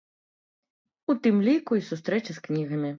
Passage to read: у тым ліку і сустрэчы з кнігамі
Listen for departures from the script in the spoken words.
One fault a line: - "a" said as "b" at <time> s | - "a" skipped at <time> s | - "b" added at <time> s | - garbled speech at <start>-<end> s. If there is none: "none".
none